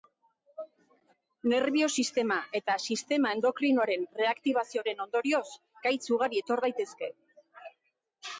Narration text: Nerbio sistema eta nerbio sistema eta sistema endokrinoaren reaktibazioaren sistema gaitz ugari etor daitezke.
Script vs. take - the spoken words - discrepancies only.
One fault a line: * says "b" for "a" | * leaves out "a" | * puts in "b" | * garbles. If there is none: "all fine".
* leaves out "nerbio"
* leaves out "eta sistema"
* says "ondorioz" for "sistema"